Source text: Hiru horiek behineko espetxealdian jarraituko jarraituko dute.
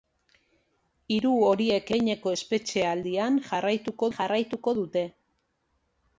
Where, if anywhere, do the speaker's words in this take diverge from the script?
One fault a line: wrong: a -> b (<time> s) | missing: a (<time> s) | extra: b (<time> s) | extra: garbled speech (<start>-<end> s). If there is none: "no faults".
no faults